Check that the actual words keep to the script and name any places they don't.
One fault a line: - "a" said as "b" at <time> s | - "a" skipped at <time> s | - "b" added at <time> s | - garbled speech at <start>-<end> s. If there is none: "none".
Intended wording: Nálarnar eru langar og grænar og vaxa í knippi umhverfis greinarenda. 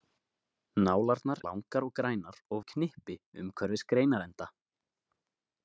- "eru" skipped at 1.4 s
- "vaxa" skipped at 2.6 s